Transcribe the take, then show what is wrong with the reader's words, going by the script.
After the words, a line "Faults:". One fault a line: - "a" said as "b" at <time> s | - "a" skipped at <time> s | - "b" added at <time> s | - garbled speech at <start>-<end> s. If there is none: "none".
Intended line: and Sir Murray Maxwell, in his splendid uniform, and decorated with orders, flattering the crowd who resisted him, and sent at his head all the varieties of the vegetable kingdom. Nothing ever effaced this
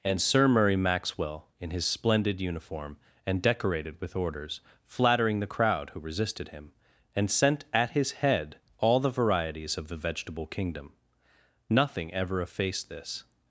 and Sir Murray Maxwell, in his splendid uniform, and decorated with orders, flattering the crowd who resisted him, and sent at his head all the varieties of the vegetable kingdom. Nothing ever effaced this
Faults:
none